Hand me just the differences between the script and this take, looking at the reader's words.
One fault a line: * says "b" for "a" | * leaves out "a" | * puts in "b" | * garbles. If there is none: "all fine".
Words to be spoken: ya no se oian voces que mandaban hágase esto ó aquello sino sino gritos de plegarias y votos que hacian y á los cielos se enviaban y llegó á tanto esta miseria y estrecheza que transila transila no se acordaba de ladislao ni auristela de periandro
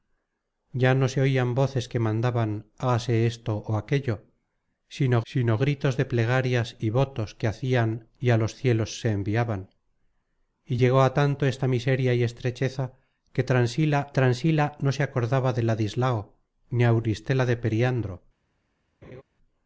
all fine